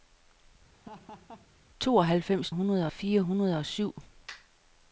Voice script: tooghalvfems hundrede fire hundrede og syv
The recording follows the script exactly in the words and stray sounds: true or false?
false